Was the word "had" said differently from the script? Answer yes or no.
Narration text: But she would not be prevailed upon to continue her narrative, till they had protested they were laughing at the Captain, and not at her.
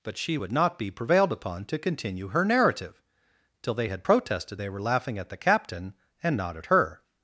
no